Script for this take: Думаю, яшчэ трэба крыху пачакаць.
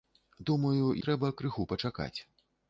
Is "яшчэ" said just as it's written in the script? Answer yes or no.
no